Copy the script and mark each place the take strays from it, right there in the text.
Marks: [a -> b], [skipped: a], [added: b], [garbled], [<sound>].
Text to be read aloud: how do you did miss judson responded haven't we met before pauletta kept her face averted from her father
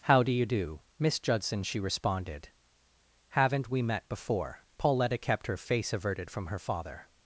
how do you [did -> do] miss judson [added: she] responded haven't we met before pauletta kept her face averted from her father